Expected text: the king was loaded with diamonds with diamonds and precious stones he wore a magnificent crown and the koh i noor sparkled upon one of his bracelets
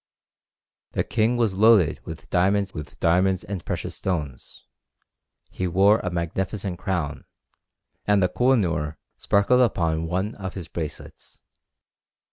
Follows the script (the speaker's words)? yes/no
yes